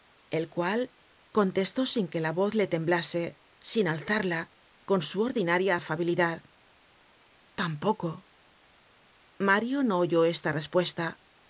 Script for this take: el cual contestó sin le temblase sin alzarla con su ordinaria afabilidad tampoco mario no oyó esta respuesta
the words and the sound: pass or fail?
fail